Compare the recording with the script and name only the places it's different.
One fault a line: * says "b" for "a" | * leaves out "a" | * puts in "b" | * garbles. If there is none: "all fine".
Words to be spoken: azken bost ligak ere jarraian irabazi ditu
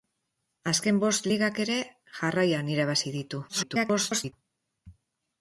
* garbles